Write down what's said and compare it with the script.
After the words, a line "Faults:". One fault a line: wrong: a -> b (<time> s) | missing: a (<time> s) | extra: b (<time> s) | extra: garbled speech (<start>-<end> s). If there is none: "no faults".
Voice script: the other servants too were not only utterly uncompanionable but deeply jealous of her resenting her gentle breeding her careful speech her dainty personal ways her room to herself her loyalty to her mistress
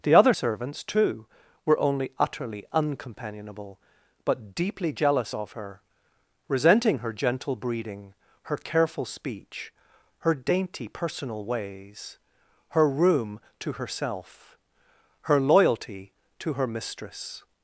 the other servants too were only utterly uncompanionable but deeply jealous of her resenting her gentle breeding her careful speech her dainty personal ways her room to herself her loyalty to her mistress
Faults:
missing: not (1.8 s)